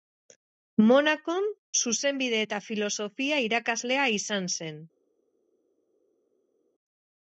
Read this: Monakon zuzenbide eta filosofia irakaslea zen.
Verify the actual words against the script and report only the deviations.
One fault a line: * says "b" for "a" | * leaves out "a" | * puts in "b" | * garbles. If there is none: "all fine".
* puts in "izan"